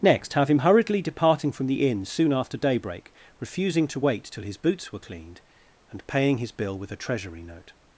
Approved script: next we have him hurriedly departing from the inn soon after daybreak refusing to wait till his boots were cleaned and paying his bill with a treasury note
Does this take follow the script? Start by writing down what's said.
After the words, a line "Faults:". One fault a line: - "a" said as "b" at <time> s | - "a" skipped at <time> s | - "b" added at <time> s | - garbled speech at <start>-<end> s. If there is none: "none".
next have him hurriedly departing from the inn soon after daybreak refusing to wait till his boots were cleaned and paying his bill with a treasury note
Faults:
- "we" skipped at 0.3 s